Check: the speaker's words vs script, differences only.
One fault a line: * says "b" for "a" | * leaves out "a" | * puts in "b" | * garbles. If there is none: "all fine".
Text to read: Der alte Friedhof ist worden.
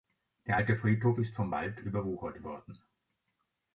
* puts in "vom Wald überwuchert"